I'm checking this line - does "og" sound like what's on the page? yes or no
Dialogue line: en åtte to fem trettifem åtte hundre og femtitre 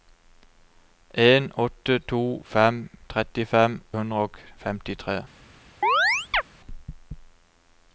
yes